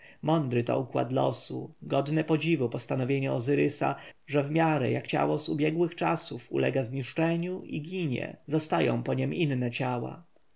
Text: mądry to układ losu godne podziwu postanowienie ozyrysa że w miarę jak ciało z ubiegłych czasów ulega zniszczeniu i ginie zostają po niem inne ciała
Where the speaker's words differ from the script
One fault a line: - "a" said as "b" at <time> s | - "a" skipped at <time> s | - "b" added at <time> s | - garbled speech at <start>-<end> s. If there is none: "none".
none